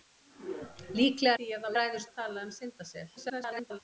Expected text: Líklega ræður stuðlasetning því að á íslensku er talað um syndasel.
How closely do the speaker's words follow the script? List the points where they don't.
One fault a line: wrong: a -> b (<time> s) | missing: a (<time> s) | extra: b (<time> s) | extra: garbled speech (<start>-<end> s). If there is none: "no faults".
missing: ræður stuðlasetning (1.4 s)
wrong: íslensku -> ræður (1.8 s)
extra: garbled speech (3.2-3.8 s)